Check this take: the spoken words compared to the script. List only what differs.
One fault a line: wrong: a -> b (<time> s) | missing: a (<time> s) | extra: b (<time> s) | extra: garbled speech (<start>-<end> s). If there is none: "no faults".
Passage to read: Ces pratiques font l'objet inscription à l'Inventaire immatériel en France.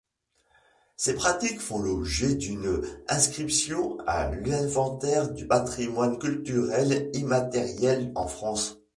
extra: d'une (2.4 s)
extra: du patrimoine culturel (5.3 s)